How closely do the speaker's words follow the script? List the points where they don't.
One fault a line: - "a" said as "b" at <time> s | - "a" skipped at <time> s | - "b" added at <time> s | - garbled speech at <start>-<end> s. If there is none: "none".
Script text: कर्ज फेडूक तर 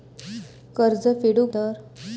none